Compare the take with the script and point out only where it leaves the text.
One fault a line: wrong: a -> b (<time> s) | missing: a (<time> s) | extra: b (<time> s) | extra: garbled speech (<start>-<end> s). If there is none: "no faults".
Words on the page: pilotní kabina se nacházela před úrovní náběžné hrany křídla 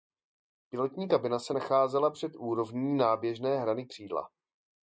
no faults